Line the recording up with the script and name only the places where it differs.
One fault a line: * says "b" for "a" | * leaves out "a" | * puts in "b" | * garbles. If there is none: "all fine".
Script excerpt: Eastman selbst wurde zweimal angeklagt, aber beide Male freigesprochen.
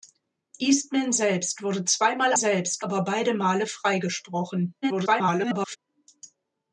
* says "selbst" for "angeklagt"
* garbles